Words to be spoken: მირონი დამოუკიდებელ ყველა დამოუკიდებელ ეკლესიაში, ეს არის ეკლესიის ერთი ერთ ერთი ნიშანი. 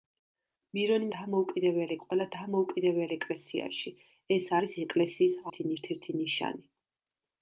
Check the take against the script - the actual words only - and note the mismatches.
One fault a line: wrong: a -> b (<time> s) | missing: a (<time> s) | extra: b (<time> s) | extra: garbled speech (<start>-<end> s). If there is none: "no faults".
no faults